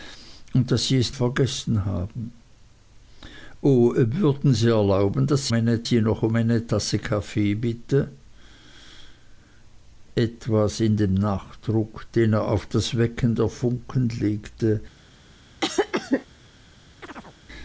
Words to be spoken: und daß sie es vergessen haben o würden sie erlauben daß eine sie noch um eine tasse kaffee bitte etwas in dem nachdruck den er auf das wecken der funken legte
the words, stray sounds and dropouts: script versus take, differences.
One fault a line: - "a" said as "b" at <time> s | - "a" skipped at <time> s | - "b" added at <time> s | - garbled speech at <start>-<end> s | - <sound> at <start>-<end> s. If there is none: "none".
- cough at 15.6-16.3 s
- chirp at 17.0-17.4 s